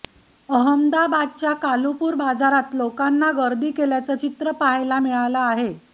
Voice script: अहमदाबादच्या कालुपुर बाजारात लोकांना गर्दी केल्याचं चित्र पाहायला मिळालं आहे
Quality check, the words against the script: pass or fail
pass